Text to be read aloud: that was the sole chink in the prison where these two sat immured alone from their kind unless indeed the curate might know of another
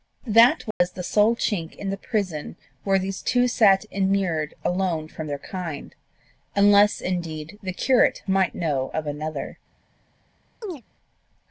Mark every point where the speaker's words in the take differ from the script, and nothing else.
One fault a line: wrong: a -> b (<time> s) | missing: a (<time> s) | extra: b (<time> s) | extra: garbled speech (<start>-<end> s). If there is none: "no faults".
no faults